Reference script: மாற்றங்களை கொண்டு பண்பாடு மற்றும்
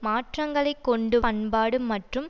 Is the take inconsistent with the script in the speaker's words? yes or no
no